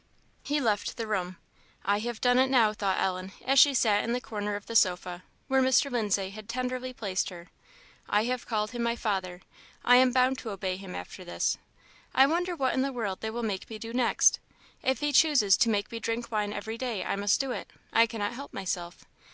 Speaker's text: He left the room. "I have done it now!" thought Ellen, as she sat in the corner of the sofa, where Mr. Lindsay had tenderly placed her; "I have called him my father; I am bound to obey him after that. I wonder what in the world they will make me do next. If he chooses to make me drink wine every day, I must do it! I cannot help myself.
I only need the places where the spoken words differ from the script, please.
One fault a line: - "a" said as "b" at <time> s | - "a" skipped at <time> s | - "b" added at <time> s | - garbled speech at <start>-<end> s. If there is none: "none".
- "that" said as "this" at 11.2 s